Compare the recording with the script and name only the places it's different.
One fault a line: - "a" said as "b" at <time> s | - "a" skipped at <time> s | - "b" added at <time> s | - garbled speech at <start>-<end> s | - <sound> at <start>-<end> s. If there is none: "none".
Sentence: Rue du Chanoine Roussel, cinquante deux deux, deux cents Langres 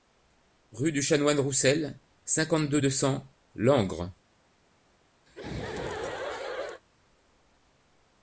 - "deux" skipped at 2.9 s
- laugh at 5.3-6.8 s